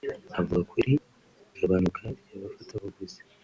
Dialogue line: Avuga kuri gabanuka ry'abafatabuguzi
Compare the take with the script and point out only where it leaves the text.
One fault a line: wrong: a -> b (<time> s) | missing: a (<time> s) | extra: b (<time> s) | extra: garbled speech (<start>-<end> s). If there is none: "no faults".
no faults